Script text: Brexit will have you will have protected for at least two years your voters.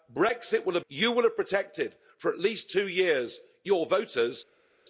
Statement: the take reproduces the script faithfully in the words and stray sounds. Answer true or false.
true